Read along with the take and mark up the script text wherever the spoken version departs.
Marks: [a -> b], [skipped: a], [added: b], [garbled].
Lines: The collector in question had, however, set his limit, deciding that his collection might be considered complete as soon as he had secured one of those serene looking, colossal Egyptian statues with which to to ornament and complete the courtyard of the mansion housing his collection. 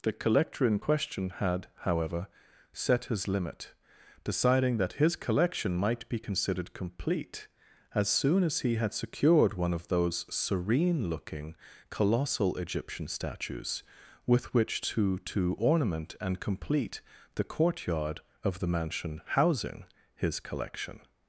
The collector in question had, however, set his limit, deciding that his collection might be considered complete as soon as he had secured one of those serene looking, colossal Egyptian statues with which to to ornament and complete the courtyard of the mansion housing his collection.